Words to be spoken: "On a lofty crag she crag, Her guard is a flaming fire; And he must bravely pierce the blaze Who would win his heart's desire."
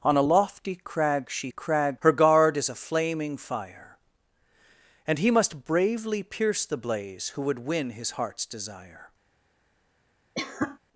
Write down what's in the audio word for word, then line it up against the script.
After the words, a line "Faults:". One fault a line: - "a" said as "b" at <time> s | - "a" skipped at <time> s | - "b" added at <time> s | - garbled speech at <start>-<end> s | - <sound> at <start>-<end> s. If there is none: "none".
"On a lofty crag she crag, Her guard is a flaming fire; And he must bravely pierce the blaze Who would win his heart's desire."
Faults:
- cough at 10.3-10.8 s